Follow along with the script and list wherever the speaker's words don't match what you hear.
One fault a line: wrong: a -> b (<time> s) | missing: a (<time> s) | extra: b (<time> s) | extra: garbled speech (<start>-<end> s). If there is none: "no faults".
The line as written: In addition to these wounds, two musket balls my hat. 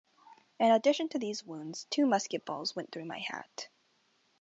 extra: went through (2.7 s)